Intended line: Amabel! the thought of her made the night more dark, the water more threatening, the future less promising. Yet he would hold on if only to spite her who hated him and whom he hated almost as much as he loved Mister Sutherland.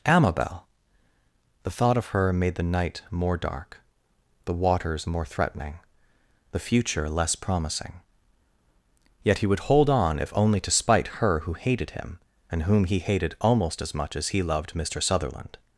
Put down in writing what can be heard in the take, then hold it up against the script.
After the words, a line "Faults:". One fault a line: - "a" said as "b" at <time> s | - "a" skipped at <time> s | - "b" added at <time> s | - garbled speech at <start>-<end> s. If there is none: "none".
Amabel! the thought of her made the night more dark, the waters more threatening, the future less promising. Yet he would hold on if only to spite her who hated him and whom he hated almost as much as he loved Mister Sutherland.
Faults:
- "water" said as "waters" at 4.5 s